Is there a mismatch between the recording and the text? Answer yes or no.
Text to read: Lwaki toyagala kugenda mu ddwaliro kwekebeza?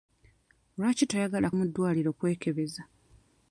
yes